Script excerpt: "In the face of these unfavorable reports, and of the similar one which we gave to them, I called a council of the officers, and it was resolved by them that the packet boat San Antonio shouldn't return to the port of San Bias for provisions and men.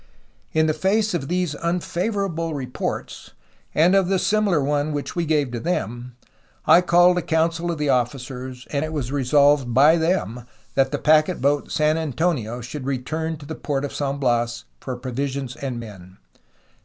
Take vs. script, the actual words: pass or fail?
fail